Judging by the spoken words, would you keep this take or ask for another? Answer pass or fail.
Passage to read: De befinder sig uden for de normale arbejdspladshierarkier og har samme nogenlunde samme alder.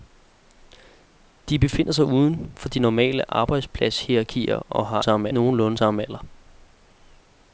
pass